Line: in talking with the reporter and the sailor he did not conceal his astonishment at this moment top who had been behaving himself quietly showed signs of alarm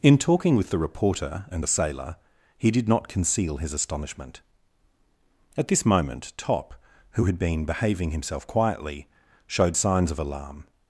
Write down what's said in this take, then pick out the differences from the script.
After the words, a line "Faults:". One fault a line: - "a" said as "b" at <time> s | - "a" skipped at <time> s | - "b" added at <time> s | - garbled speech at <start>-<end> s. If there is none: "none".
in talking with the reporter and the sailor he did not conceal his astonishment at this moment top who had been behaving himself quietly showed signs of alarm
Faults:
none